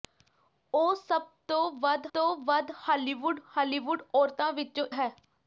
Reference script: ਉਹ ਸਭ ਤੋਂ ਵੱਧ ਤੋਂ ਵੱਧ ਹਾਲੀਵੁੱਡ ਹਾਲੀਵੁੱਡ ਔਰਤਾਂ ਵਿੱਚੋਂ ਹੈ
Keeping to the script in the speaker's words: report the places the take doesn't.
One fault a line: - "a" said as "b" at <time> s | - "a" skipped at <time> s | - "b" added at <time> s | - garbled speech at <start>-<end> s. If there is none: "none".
none